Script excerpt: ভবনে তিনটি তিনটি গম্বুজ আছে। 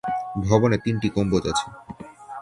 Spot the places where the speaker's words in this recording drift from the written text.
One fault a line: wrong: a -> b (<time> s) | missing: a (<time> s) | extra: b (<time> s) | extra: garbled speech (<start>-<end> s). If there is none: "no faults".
missing: তিনটি (1.1 s)